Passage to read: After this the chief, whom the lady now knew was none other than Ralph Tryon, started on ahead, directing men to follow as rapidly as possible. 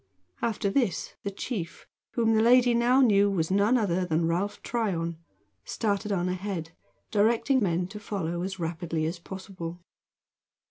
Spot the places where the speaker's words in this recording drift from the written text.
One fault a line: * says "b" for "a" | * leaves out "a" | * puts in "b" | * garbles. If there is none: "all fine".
all fine